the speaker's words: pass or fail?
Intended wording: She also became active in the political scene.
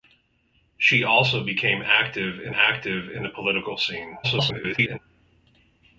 fail